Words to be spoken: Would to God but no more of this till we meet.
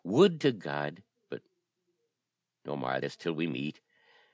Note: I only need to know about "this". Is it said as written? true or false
true